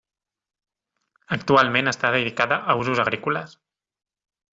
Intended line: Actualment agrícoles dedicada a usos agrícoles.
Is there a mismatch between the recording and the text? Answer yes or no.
yes